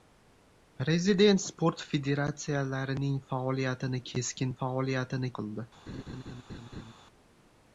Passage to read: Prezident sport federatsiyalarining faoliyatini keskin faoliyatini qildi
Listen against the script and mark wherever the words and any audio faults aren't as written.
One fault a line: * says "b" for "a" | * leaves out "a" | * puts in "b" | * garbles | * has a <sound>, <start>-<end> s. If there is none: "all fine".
* has a laugh, 5.9-6.9 s